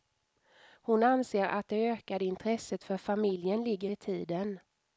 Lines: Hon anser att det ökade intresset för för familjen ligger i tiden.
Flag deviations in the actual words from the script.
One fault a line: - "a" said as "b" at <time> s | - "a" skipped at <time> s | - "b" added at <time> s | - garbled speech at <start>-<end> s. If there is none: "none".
- "för" skipped at 3.0 s